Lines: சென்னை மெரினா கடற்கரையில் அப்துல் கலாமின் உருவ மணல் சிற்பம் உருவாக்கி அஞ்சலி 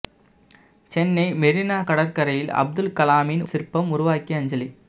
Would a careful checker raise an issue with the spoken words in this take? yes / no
yes